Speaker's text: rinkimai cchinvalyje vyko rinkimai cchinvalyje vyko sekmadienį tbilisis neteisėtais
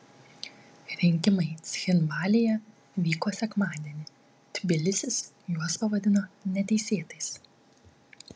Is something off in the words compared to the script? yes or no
yes